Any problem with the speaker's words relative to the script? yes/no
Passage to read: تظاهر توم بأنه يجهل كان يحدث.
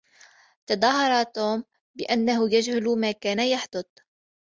yes